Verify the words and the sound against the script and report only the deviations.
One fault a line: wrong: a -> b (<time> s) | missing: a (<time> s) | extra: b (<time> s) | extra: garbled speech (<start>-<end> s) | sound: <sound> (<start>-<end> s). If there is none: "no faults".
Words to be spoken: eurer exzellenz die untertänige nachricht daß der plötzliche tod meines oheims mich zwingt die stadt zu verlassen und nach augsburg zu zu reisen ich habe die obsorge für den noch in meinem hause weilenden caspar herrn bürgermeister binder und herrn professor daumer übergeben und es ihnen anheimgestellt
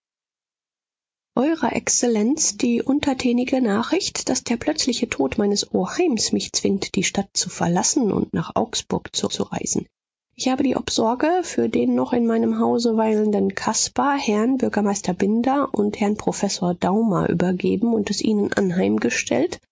no faults